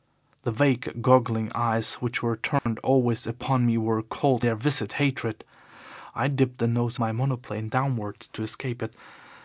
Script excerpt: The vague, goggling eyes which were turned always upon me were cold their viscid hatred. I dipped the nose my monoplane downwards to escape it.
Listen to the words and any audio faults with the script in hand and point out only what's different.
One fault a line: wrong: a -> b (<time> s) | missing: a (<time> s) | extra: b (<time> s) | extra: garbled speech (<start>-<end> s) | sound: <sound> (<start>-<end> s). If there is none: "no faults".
sound: dropout (2.6-2.7 s)